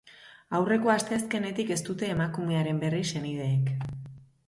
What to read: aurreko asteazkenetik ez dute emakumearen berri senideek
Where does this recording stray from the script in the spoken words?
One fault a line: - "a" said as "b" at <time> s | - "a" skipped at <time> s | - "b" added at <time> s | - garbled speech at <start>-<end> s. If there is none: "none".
none